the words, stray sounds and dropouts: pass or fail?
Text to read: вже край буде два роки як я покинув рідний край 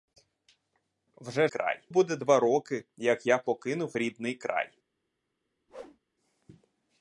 fail